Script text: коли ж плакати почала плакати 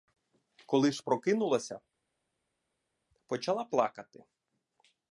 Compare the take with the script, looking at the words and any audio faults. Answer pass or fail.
fail